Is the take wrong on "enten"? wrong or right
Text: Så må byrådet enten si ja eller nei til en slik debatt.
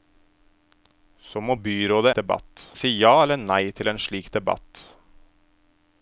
wrong